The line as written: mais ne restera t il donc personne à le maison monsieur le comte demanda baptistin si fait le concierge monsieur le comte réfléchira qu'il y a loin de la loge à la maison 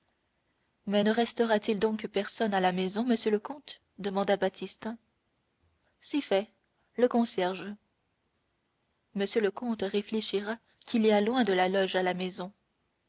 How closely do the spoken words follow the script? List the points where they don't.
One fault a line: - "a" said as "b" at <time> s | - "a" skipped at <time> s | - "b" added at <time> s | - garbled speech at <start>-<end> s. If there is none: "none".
- "le" said as "la" at 2.6 s